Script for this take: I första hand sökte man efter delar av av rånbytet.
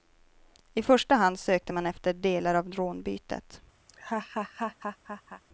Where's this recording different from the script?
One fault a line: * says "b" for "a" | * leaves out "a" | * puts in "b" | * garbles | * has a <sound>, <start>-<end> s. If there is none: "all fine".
* leaves out "av"
* has a laugh, 3.9-5.4 s